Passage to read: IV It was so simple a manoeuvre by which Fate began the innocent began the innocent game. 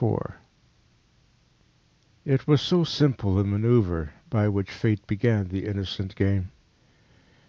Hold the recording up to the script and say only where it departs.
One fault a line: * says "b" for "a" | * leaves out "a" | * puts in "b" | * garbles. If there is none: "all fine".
* leaves out "began the innocent"